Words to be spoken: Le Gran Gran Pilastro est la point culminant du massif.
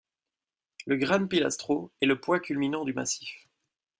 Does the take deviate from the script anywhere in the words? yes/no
yes